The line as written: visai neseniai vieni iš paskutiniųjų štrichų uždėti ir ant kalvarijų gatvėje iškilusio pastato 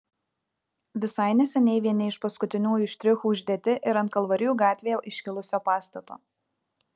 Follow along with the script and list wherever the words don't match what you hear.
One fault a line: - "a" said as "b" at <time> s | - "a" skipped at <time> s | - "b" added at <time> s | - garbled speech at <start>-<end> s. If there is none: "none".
none